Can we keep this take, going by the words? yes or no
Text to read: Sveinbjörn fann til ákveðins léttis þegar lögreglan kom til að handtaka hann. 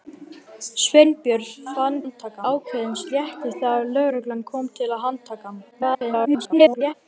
no